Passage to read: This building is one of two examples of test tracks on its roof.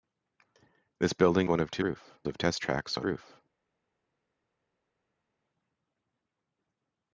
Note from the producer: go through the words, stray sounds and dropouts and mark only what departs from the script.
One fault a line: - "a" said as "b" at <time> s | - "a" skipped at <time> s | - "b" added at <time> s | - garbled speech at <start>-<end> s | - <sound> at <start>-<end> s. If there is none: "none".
- "is" skipped at 1.5 s
- "examples" said as "roof" at 1.8 s
- "its" skipped at 3.1 s